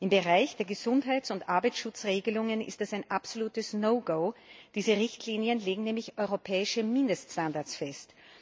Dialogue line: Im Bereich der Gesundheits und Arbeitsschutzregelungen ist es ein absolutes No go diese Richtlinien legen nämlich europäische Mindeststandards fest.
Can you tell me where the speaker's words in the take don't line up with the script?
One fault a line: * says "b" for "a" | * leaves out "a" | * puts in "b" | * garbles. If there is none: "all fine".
all fine